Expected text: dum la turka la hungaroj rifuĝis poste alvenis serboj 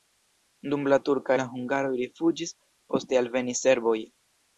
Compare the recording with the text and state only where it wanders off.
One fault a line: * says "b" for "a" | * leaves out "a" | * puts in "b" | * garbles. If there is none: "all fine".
all fine